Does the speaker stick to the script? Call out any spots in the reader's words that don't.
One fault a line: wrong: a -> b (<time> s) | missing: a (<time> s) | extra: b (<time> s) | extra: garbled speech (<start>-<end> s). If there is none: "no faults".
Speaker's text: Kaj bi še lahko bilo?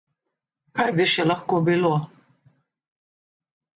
no faults